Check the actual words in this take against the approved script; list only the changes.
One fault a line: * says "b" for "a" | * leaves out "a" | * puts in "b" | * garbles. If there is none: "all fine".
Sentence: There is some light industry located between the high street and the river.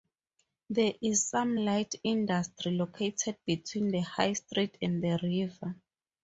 all fine